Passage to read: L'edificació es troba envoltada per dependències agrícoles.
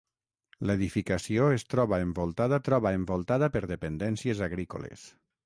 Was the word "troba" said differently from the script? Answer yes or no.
no